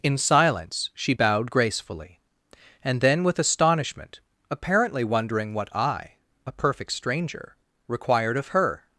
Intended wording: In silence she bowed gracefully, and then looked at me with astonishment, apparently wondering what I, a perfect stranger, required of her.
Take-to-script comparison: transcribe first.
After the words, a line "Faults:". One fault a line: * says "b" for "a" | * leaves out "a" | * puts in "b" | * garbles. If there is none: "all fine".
In silence she bowed gracefully, and then with astonishment, apparently wondering what I, a perfect stranger, required of her.
Faults:
* leaves out "looked at me"